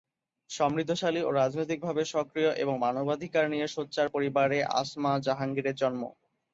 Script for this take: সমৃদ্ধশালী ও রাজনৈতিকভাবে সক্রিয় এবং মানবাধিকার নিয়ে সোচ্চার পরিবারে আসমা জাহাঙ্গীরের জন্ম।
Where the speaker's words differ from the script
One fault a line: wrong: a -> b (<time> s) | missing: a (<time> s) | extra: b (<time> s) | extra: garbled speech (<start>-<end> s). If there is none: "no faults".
no faults